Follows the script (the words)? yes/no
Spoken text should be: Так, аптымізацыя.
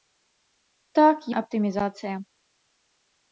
yes